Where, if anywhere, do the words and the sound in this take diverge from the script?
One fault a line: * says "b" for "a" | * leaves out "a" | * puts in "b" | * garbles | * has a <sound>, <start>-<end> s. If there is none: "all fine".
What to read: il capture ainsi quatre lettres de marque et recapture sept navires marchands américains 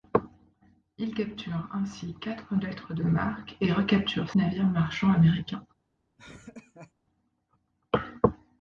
* leaves out "sept"
* has a laugh, 6.2-6.9 s